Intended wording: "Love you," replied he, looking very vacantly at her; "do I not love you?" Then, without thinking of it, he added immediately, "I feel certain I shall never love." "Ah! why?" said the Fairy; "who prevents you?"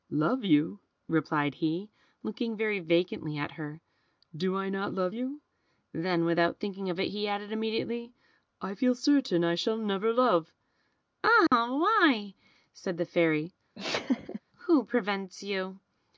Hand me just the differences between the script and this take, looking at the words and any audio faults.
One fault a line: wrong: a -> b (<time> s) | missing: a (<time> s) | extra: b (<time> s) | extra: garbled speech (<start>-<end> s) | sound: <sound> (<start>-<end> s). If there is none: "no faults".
sound: dropout (11.5-11.5 s)
sound: laugh (13.7-14.4 s)